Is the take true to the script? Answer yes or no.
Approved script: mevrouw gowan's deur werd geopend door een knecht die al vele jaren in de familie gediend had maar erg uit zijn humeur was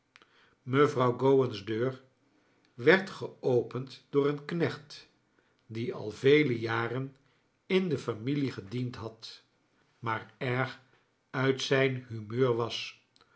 yes